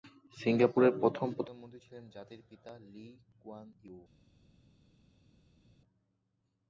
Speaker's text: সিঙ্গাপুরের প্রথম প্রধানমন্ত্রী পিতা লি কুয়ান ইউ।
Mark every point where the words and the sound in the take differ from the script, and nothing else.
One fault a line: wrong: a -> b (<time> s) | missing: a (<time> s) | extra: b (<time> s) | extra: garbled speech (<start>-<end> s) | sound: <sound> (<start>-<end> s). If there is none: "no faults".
extra: ছিলেন জাতির (1.8 s)